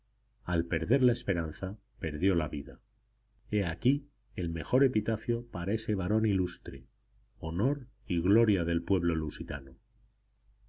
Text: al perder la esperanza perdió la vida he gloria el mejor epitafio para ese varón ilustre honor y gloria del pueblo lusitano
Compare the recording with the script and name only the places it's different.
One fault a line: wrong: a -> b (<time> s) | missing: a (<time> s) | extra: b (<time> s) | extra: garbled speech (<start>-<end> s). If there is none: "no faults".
wrong: gloria -> aquí (3.6 s)